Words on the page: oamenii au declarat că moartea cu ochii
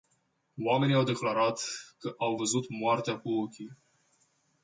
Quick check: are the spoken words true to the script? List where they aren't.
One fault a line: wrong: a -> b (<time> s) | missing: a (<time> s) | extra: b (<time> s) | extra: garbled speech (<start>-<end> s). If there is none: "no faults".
extra: au văzut (2.2 s)